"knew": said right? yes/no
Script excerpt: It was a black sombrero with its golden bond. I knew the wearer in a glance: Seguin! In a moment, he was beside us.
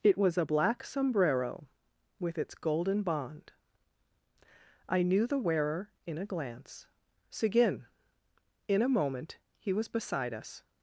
yes